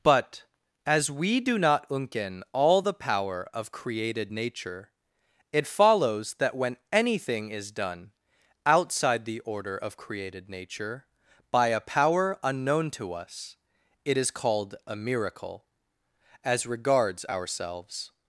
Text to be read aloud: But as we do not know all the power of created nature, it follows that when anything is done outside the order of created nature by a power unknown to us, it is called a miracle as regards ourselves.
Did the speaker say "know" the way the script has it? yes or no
no